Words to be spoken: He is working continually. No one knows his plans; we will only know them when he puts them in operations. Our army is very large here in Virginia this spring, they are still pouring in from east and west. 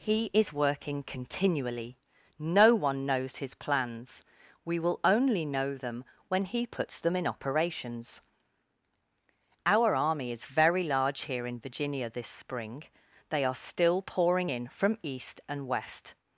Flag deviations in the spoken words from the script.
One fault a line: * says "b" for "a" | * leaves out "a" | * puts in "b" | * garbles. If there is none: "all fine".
all fine